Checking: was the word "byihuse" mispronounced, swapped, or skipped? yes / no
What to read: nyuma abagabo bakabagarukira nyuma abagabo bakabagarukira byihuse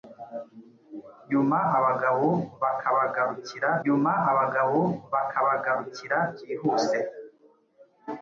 no